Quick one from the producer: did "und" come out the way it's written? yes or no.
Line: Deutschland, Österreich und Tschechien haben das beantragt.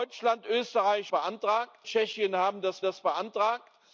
no